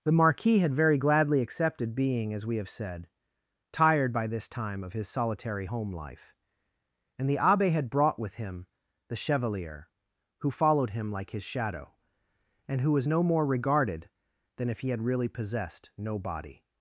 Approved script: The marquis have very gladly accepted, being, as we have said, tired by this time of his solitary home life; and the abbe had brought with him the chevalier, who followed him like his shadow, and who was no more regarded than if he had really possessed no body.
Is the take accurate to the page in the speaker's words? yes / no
no